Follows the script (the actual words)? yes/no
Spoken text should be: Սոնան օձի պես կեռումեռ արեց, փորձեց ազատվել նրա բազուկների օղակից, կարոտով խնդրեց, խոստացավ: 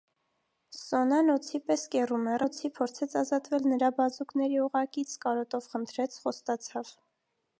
no